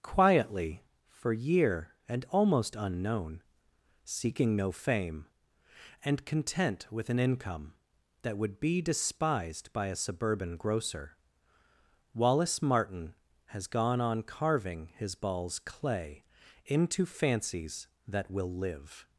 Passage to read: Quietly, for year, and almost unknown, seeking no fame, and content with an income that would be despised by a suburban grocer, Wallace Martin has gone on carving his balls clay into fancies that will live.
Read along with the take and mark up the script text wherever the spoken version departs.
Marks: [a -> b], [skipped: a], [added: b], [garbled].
Quietly, for year, and almost unknown, seeking no fame, and content with an income that would be despised by a suburban grocer, Wallace Martin has gone on carving his balls clay into fancies that will live.